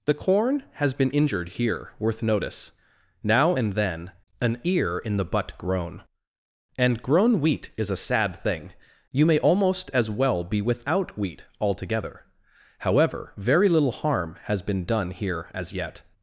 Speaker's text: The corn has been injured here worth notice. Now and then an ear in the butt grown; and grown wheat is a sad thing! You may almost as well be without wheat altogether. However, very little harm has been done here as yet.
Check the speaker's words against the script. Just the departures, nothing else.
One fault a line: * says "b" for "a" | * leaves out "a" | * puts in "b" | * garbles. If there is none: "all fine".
all fine